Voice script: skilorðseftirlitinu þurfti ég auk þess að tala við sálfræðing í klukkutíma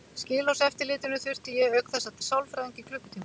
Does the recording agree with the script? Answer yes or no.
no